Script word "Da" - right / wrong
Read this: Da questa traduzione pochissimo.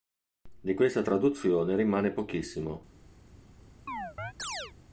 wrong